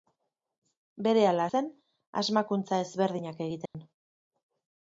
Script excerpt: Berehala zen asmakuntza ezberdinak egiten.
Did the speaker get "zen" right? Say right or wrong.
right